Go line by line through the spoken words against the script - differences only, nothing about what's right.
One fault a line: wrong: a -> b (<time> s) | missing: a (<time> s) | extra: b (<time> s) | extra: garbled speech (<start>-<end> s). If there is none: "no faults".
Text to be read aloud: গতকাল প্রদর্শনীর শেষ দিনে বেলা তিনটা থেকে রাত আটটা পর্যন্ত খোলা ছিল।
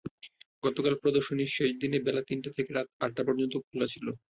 no faults